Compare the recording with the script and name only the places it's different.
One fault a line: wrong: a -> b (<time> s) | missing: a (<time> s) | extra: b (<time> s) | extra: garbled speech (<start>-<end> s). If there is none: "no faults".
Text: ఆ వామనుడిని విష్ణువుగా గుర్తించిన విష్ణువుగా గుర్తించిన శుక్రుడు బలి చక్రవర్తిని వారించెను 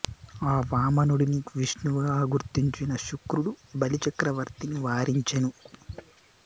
missing: విష్ణువుగా గుర్తించిన (2.9 s)